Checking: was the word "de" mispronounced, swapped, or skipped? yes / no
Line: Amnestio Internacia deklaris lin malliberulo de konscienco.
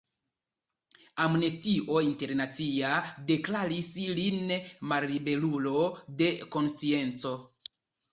no